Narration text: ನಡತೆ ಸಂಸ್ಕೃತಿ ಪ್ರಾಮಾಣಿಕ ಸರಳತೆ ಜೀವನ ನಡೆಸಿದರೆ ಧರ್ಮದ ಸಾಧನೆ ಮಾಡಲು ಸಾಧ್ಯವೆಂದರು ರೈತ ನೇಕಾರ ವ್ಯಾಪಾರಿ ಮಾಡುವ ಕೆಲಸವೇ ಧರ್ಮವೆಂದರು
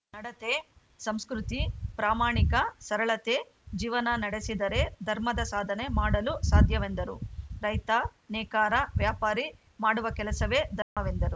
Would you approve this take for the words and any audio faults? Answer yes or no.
no